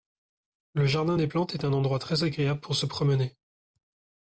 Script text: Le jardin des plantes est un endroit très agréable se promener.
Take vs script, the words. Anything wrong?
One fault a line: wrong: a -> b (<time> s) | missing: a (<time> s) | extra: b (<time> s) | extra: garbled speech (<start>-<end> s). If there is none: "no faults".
extra: pour (2.6 s)